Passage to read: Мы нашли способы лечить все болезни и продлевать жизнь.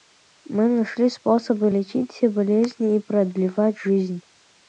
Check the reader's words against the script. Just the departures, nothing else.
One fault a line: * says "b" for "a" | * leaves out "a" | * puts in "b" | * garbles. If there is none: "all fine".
all fine